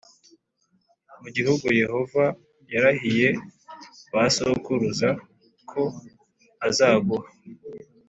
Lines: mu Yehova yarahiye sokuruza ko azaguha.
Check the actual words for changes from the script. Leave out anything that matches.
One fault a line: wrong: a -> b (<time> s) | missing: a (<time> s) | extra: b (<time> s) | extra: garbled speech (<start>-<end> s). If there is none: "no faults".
extra: gihugu (1.3 s)
extra: ba (4.1 s)